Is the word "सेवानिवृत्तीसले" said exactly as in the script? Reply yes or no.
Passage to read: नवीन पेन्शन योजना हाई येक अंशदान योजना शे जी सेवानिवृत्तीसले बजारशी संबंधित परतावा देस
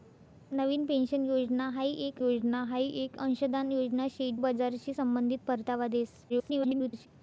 no